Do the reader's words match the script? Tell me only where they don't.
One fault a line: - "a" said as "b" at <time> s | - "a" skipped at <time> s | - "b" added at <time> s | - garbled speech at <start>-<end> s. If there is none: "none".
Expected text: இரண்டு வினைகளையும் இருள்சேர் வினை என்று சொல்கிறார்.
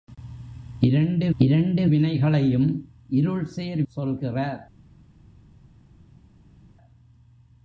- "இரண்டு" added at 1.4 s
- "வினை என்று" skipped at 3.8 s